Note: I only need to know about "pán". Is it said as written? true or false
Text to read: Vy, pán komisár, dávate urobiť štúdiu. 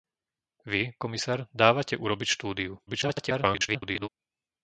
false